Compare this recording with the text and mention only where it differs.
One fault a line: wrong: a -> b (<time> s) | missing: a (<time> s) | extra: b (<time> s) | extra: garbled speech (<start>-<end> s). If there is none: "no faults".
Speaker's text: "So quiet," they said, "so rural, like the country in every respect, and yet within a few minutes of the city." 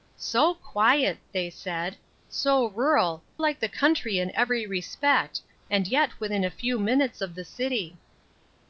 no faults